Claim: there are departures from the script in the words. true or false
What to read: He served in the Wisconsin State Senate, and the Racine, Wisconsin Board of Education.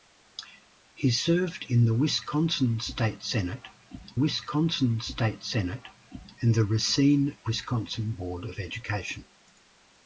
true